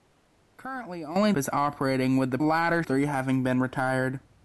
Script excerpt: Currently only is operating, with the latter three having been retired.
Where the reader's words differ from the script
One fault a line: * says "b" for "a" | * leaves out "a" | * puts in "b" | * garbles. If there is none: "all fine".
all fine